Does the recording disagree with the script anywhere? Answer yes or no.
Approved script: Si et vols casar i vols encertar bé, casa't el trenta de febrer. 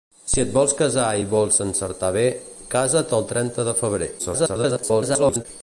yes